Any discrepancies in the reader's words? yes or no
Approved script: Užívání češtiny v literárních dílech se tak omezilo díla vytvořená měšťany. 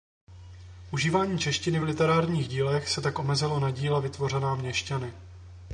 yes